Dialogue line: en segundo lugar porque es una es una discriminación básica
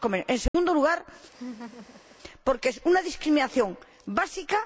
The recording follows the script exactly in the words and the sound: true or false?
false